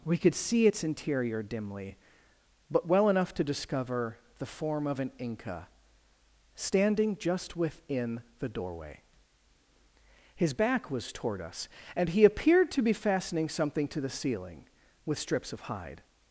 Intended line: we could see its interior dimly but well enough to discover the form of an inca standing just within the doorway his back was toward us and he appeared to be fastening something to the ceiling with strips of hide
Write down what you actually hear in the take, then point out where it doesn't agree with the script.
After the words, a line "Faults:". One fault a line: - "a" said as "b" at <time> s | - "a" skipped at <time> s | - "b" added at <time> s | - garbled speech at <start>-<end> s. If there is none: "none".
we could see its interior dimly but well enough to discover the form of an inca standing just within the doorway his back was toward us and he appeared to be fastening something to the ceiling with strips of hide
Faults:
none